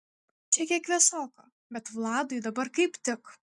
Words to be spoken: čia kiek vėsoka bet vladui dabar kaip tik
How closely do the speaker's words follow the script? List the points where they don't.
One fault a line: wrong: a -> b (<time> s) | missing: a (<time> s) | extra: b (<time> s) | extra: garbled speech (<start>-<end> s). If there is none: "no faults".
no faults